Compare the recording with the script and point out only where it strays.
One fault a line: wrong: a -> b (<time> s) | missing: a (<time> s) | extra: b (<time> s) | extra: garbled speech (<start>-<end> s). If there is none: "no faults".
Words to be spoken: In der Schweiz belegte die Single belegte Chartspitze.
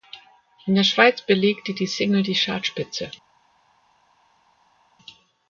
wrong: belegte -> die (2.2 s)